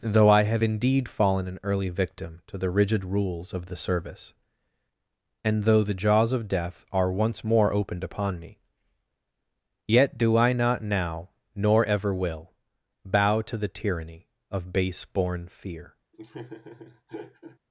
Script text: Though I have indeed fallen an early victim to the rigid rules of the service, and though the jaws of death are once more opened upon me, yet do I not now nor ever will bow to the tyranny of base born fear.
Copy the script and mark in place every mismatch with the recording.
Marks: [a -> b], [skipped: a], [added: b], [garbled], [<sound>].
Though I have indeed fallen an early victim to the rigid rules of the service, and though the jaws of death are once more opened upon me, yet do I not now nor ever will bow to the tyranny of base born fear. [laugh]